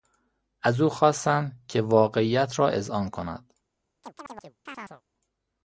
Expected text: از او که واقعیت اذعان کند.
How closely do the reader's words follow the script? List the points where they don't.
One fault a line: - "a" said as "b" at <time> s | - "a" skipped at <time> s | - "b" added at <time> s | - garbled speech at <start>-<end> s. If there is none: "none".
- "خواستند" added at 0.9 s
- "را" added at 2.6 s